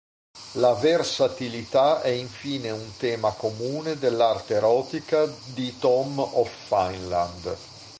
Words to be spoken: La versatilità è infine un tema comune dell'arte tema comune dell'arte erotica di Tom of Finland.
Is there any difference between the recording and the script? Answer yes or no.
yes